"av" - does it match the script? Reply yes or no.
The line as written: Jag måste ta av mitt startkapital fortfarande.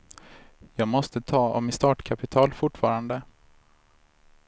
yes